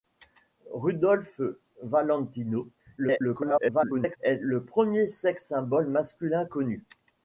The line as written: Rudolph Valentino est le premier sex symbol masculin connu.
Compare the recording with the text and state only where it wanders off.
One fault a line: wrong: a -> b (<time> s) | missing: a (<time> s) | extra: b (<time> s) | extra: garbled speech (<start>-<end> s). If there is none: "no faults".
extra: garbled speech (3.0-4.2 s)